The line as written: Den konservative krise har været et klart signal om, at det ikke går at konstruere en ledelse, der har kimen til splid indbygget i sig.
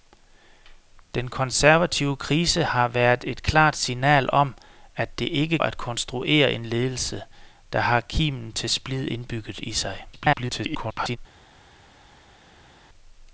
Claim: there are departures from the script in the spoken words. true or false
true